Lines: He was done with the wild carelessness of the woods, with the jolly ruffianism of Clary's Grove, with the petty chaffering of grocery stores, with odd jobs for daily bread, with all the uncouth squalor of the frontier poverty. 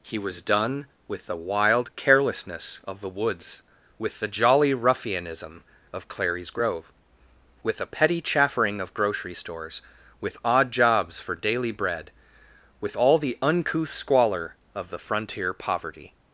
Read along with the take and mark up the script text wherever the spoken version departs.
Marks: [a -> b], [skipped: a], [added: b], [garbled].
He was done with the wild carelessness of the woods, with the jolly ruffianism of Clary's Grove, with [the -> a] petty chaffering of grocery stores, with odd jobs for daily bread, with all the uncouth squalor of the frontier poverty.